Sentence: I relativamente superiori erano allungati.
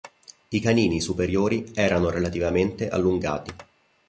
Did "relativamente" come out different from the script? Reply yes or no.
yes